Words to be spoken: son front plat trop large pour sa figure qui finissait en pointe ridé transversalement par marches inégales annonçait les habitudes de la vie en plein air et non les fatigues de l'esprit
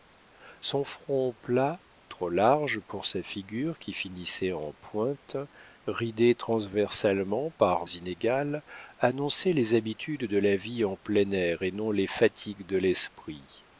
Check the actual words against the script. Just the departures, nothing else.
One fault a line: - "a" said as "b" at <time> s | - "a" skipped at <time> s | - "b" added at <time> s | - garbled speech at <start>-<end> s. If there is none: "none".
- "marches" skipped at 7.8 s